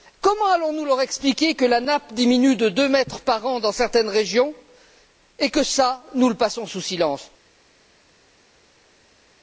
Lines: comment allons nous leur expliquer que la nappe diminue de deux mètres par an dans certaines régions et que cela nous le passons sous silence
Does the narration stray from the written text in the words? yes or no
no